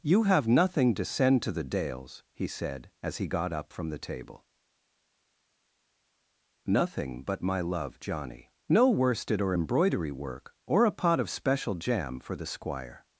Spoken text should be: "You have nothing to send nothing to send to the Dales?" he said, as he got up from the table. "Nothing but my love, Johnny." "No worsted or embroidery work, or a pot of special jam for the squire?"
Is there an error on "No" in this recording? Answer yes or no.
no